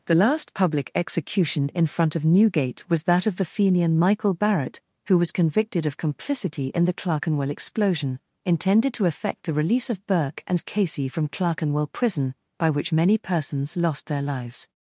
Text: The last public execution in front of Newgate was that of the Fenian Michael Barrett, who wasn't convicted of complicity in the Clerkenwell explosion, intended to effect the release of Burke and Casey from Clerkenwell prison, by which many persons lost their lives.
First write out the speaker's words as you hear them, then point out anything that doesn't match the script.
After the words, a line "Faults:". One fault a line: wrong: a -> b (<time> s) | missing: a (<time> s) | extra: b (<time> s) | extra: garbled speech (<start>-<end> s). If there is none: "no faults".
The last public execution in front of Newgate was that of the Fenian Michael Barrett, who was convicted of complicity in the Clerkenwell explosion, intended to effect the release of Burke and Casey from Clerkenwell prison, by which many persons lost their lives.
Faults:
wrong: wasn't -> was (5.2 s)